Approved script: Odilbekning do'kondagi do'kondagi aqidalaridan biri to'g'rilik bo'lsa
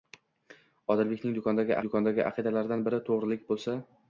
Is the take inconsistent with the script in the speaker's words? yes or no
no